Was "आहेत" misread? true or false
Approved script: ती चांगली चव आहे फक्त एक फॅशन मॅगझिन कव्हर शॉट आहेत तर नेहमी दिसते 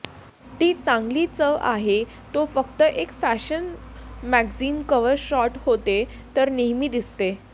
true